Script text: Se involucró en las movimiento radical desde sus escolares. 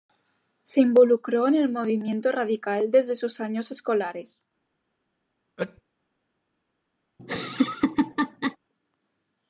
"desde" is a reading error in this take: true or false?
false